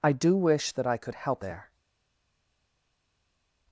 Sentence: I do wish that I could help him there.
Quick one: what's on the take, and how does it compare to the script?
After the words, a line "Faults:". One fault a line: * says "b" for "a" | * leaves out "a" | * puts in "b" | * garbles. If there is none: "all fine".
I do wish that I could help there.
Faults:
* leaves out "him"